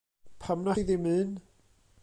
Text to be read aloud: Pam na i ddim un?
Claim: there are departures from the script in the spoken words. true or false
false